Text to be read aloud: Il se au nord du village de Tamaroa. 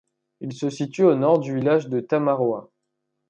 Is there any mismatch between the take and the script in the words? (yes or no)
yes